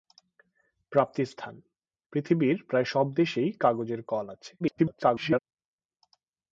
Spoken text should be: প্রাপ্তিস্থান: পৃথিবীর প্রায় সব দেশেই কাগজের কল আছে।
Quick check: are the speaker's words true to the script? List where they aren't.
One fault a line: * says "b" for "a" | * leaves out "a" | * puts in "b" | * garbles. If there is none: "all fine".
* garbles